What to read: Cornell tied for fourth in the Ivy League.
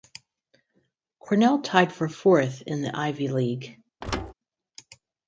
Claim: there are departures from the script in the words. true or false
false